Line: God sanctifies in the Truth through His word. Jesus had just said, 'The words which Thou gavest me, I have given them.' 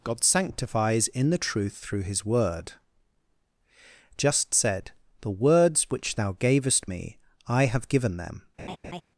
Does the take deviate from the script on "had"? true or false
true